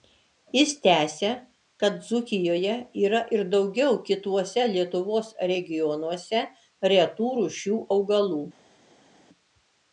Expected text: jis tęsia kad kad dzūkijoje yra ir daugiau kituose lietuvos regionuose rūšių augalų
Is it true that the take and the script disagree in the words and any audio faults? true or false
true